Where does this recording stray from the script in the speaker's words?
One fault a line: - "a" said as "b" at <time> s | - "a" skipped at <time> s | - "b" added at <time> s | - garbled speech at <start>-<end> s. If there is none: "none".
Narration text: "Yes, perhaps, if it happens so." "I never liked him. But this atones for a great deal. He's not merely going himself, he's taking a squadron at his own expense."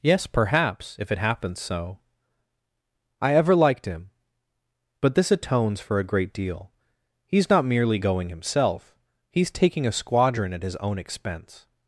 - "never" said as "ever" at 3.4 s